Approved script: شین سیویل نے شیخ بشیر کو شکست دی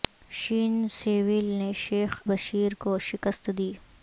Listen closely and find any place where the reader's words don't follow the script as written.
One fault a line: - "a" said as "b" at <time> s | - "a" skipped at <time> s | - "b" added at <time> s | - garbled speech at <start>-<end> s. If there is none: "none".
none